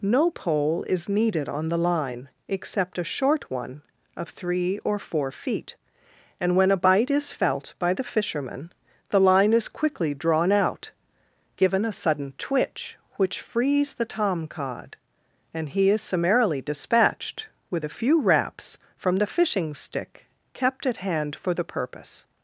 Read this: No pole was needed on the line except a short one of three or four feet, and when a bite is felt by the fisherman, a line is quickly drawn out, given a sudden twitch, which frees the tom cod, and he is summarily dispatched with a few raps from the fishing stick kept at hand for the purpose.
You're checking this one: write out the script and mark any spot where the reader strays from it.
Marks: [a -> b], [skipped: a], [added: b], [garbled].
No pole [was -> is] needed on the line except a short one of three or four feet, and when a bite is felt by the fisherman, [a -> the] line is quickly drawn out, given a sudden twitch, which frees the tom cod, and he is summarily dispatched with a few raps from the fishing stick kept at hand for the purpose.